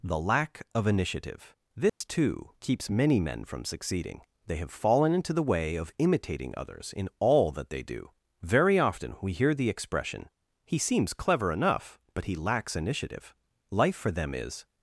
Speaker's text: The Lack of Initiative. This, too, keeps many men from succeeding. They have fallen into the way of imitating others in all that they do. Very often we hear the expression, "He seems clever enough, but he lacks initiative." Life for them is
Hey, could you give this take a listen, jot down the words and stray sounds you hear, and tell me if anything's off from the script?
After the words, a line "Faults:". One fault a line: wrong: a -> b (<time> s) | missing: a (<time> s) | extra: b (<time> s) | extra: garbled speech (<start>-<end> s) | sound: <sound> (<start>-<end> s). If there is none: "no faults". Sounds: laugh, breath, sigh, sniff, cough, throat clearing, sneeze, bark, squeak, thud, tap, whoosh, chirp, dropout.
The Lack of Initiative. This, too, keeps many men from succeeding. They have fallen into the way of imitating others in all that they do. Very often we hear the expression, "He seems clever enough, but he lacks initiative." Life for them is
Faults:
sound: dropout (1.9-2.0 s)